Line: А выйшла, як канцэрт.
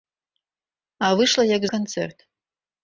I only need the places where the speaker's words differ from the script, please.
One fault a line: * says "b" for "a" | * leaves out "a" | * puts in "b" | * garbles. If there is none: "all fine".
all fine